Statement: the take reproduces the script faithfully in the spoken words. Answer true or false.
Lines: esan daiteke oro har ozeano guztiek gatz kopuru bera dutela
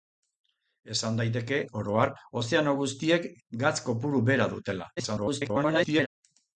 false